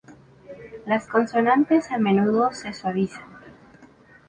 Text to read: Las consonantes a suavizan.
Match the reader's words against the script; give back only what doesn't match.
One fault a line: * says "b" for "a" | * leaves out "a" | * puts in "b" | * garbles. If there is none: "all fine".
* puts in "menudo se"